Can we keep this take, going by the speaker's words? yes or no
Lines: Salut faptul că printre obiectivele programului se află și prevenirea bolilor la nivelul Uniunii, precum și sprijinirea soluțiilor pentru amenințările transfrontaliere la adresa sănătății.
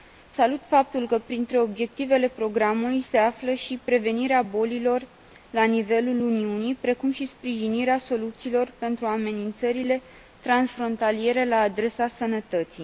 yes